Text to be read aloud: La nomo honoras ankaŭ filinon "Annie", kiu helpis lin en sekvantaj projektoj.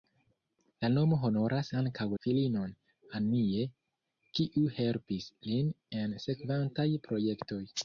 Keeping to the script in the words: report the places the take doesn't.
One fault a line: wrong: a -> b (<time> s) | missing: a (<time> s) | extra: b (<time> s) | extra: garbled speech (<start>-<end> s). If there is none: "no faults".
no faults